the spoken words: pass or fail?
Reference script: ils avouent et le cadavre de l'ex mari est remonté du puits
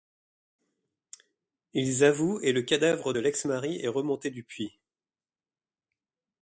pass